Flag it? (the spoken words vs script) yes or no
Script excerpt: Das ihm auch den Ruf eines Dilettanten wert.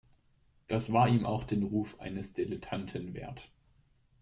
yes